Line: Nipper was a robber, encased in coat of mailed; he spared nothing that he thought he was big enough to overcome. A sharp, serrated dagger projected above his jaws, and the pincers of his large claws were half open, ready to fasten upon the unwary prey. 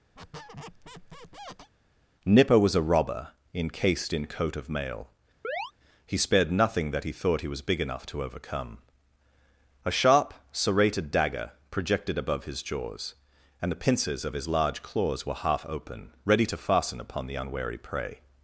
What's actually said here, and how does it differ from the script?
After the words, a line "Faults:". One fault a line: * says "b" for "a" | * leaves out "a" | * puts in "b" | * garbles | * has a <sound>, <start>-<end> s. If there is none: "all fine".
Nipper was a robber, encased in coat of mail; he spared nothing that he thought he was big enough to overcome. A sharp, serrated dagger projected above his jaws, and the pincers of his large claws were half open, ready to fasten upon the unwary prey.
Faults:
* has a squeak, 0.1-1.7 s
* says "mail" for "mailed"
* has a chirp, 5.4-5.7 s